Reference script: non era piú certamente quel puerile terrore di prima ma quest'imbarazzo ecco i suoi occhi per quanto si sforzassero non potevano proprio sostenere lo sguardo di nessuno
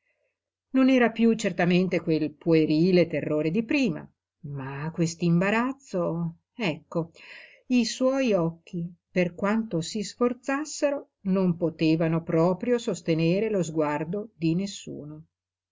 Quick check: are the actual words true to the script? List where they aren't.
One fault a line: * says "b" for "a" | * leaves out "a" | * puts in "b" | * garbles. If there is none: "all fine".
all fine